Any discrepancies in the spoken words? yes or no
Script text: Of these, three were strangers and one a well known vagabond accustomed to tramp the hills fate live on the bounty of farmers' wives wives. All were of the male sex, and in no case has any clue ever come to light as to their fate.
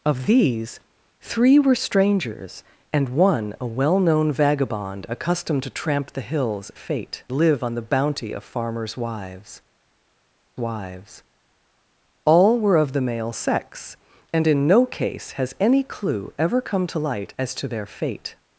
no